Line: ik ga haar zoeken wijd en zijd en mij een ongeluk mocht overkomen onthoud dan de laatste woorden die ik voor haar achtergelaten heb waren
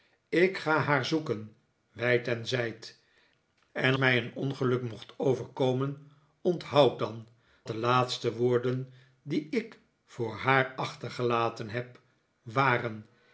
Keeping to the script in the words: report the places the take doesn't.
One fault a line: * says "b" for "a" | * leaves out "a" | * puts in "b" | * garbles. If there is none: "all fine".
all fine